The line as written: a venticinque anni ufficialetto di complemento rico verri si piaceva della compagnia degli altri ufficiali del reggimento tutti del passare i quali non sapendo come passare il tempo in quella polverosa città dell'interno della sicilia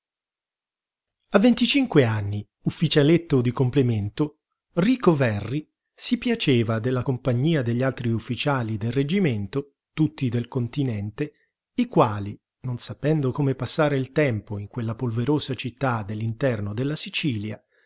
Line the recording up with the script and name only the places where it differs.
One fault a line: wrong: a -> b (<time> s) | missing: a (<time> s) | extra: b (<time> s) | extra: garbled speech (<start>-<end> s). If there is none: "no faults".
wrong: passare -> continente (10.5 s)